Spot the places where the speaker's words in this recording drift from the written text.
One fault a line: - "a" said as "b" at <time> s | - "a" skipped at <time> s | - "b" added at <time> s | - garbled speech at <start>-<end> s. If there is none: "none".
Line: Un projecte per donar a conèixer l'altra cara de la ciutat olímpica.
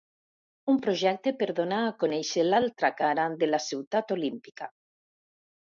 none